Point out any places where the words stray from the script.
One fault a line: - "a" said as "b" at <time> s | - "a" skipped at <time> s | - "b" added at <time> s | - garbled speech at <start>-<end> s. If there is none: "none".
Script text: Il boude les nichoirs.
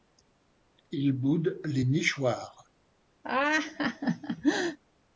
none